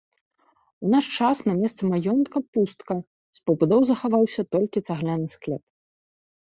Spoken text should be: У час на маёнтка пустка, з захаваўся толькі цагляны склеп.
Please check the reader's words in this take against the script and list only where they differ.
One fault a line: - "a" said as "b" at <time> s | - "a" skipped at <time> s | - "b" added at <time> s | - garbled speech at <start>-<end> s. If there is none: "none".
- "наш" added at 0.9 s
- "месцы" added at 1.6 s
- "пабудоў" added at 3.5 s